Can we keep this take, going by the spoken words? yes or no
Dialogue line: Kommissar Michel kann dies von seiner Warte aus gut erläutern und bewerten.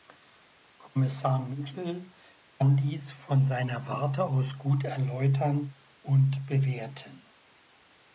yes